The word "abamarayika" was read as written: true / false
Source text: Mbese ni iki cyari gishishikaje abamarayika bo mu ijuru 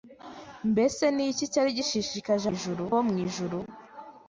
false